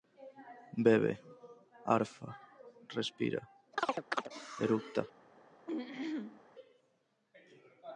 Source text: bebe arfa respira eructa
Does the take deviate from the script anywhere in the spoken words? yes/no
no